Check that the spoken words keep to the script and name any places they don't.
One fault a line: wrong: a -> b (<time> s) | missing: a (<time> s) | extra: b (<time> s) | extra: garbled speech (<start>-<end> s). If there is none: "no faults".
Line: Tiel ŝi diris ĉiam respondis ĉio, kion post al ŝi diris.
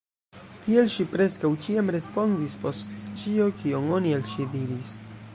wrong: diris -> preskaŭ (1.1 s)
extra: post (2.6 s)
wrong: post -> oni (3.9 s)